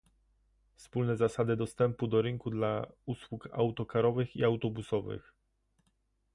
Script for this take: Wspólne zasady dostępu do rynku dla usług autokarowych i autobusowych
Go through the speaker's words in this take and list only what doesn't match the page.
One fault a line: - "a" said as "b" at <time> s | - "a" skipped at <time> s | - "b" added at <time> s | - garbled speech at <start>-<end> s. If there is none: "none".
none